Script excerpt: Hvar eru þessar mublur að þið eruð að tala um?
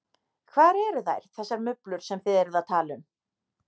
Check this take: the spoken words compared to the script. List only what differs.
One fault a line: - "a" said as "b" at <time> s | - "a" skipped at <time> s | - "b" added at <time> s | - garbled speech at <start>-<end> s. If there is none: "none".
- "þær" added at 1.1 s
- "að" said as "sem" at 2.1 s